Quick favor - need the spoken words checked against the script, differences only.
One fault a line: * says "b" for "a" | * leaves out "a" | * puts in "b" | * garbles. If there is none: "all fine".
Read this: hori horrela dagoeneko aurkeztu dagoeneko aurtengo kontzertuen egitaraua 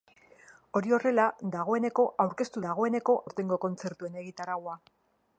all fine